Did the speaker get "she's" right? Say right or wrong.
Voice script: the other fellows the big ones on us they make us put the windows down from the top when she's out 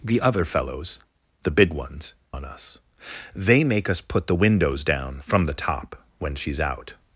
right